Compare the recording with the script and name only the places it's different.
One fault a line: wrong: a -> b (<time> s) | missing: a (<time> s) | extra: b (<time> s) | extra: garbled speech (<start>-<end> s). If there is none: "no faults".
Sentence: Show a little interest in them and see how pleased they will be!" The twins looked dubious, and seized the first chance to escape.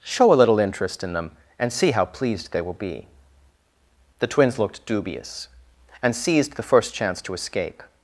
no faults